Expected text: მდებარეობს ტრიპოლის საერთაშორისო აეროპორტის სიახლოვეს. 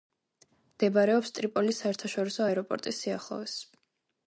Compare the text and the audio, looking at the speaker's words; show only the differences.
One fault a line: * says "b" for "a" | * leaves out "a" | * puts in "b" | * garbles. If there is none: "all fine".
all fine